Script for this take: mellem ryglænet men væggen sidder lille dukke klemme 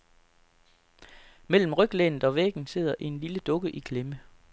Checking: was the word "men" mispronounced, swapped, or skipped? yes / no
yes